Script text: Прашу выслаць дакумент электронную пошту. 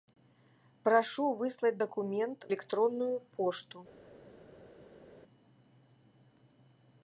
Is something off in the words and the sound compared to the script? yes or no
no